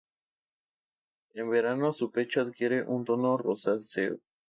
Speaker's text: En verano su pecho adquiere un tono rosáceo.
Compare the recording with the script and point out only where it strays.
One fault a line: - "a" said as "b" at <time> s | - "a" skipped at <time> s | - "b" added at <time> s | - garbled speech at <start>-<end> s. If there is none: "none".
none